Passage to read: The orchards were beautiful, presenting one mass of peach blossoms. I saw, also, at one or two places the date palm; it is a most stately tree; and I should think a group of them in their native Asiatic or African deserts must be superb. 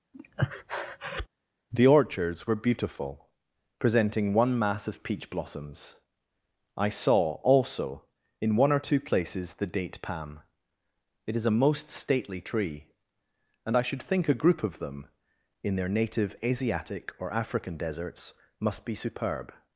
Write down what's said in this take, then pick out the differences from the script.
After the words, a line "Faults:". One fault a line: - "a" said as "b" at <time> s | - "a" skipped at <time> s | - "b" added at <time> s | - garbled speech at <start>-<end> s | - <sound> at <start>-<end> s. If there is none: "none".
The orchards were beautiful, presenting one mass of peach blossoms. I saw, also, in one or two places the date palm; it is a most stately tree; and I should think a group of them in their native Asiatic or African deserts must be superb.
Faults:
- breath at 0.1-1.3 s
- "at" said as "in" at 8.4 s